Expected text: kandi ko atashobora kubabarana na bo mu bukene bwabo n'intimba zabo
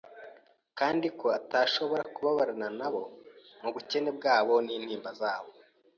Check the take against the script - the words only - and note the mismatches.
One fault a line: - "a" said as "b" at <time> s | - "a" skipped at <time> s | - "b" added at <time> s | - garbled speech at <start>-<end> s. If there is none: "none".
none